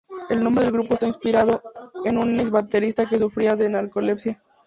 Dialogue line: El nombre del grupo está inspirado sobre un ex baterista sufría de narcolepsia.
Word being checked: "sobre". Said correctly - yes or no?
no